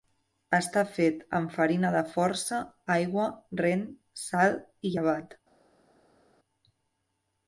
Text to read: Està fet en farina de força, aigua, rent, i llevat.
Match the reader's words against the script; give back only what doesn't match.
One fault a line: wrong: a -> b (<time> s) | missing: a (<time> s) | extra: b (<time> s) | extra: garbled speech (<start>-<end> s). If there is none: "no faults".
wrong: en -> amb (1.4 s)
extra: sal (4.3 s)